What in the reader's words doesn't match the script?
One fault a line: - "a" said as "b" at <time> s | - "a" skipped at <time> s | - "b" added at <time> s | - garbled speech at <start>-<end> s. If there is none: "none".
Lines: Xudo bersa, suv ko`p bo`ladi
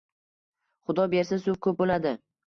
none